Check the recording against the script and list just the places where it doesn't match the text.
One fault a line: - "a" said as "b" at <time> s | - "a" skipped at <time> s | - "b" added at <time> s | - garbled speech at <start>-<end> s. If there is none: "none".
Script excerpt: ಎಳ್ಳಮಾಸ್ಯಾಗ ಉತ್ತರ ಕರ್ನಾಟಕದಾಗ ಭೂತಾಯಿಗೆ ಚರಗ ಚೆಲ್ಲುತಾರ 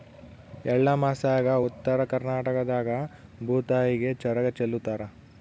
none